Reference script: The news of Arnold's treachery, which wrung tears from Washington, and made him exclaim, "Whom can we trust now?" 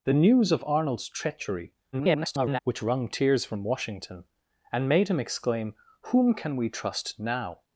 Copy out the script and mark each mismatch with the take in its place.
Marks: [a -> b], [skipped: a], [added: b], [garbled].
The news of Arnold's treachery, [garbled] which wrung tears from Washington, and made him exclaim, "Whom can we trust now?"